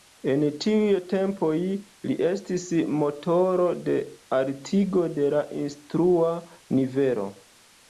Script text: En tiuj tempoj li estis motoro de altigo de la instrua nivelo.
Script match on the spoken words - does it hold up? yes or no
yes